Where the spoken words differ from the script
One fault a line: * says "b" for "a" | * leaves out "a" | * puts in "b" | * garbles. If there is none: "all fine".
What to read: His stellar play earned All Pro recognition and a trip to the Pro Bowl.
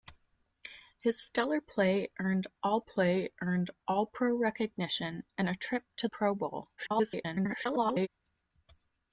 * puts in "play earned All"
* leaves out "the"
* garbles